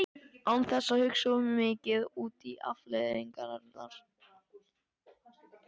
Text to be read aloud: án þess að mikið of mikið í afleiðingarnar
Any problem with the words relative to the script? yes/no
yes